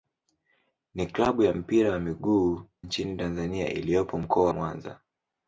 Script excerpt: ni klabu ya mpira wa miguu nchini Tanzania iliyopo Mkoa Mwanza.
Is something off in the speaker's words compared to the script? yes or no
no